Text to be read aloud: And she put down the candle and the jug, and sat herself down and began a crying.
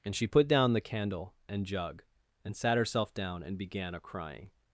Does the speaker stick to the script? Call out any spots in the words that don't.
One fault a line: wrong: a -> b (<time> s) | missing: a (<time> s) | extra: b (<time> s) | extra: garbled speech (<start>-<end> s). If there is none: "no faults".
missing: the (1.7 s)